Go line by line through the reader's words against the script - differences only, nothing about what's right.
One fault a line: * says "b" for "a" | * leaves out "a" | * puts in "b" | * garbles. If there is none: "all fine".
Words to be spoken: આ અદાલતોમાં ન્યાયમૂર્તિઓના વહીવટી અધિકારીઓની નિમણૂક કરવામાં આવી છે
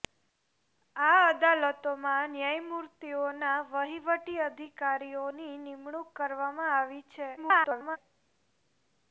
* garbles